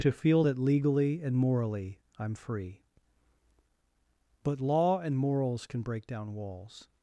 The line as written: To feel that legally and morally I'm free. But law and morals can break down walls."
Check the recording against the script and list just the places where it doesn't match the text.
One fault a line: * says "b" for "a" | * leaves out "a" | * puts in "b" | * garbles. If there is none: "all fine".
all fine